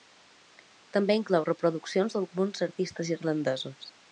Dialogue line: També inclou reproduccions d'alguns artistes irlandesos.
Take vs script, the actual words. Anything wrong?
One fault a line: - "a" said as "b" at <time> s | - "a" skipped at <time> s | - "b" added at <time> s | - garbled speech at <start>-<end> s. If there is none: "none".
none